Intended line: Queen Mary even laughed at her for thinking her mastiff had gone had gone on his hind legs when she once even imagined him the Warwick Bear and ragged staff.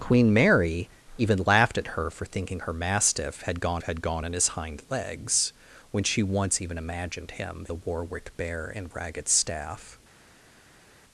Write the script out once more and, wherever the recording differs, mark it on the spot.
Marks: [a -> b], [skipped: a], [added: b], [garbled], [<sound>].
Queen Mary even laughed at her for thinking her mastiff had gone had gone on his hind legs when she once even imagined him the Warwick Bear and ragged staff.